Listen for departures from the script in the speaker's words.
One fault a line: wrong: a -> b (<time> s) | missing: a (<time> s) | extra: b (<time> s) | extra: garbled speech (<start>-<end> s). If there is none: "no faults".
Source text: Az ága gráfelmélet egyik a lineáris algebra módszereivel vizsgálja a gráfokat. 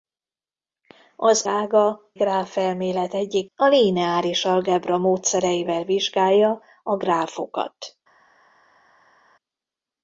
no faults